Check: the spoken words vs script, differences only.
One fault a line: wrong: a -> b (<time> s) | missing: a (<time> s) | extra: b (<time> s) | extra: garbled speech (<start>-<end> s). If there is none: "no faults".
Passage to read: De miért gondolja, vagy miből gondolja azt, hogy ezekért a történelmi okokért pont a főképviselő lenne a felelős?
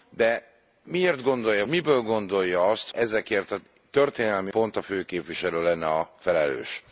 missing: vagy (1.6 s)
missing: hogy (2.9 s)
missing: okokért (4.5 s)